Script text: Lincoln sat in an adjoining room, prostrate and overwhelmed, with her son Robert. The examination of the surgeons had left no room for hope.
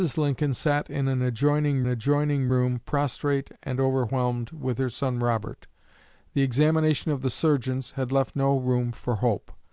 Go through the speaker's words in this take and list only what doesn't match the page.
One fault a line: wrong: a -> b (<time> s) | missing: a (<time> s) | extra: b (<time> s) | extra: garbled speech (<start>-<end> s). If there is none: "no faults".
extra: adjoining (1.9 s)